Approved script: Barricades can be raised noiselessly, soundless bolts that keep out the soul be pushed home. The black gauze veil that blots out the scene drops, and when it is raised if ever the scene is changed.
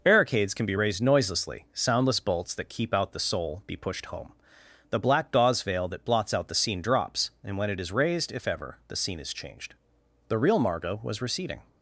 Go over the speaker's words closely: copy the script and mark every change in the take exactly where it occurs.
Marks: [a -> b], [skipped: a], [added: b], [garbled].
Barricades can be raised noiselessly, soundless bolts that keep out the soul be pushed home. The black gauze veil that blots out the scene drops, and when it is raised if ever the scene is changed. [added: The real Margot was receding]